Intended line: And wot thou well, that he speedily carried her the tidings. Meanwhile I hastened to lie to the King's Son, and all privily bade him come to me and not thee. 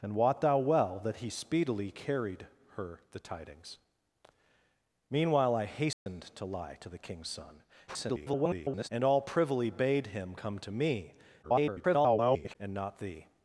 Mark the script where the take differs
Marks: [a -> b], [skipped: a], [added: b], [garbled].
And wot thou well, that he speedily carried her the tidings. Meanwhile I hastened to lie to the King's Son, [garbled] and all privily bade him come to me [garbled] and not thee.